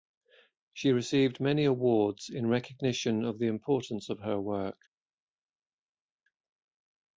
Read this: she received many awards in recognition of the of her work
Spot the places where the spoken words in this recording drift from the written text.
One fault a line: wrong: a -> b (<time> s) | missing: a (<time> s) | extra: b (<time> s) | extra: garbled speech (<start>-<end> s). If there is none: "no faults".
extra: importance (3.5 s)